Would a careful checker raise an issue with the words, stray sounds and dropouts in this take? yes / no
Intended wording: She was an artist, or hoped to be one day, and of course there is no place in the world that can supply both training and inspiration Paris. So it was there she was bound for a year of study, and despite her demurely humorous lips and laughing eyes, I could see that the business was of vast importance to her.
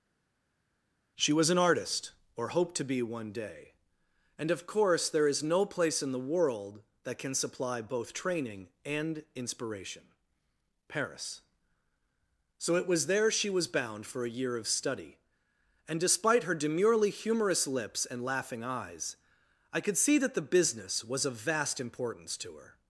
no